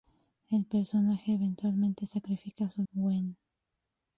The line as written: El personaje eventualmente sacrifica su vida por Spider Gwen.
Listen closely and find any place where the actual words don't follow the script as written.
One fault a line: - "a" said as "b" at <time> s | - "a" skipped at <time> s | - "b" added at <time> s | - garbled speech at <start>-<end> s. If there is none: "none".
- "vida por Spider" skipped at 2.8 s